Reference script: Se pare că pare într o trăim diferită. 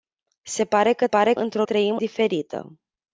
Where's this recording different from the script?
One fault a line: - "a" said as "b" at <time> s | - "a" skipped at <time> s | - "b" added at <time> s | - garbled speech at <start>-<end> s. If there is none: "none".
none